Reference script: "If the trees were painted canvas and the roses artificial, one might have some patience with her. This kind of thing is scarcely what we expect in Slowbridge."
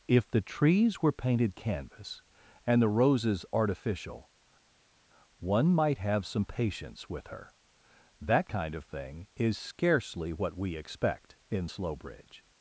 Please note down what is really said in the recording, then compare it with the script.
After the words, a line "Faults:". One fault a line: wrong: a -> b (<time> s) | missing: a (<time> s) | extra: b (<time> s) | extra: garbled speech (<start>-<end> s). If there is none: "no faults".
"If the trees were painted canvas and the roses artificial, one might have some patience with her. That kind of thing is scarcely what we expect in Slowbridge."
Faults:
wrong: This -> That (8.2 s)